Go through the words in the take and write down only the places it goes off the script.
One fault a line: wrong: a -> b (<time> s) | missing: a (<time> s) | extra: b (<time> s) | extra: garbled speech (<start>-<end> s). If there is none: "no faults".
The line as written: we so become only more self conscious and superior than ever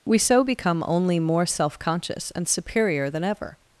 no faults